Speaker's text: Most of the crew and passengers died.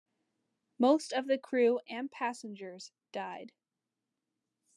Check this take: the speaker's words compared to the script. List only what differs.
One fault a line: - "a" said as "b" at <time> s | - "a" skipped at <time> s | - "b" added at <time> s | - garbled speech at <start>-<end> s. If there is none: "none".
none